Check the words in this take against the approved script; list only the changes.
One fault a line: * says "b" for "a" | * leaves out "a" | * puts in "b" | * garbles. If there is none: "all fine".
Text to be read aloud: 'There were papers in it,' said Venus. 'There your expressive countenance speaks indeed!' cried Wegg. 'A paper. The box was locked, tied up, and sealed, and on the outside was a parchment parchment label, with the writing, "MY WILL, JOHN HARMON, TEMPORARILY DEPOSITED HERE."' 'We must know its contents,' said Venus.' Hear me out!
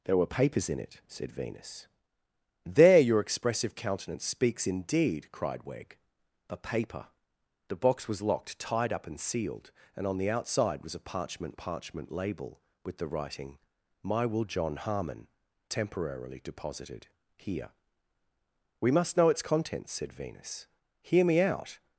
all fine